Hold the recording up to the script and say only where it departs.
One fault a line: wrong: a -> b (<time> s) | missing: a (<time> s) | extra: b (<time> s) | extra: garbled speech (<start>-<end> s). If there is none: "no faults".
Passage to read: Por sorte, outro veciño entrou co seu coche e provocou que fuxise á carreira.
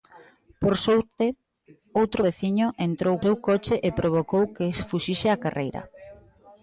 missing: co (3.1 s)